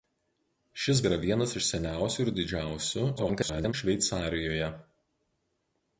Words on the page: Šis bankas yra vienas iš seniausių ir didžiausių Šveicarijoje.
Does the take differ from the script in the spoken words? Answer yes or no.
yes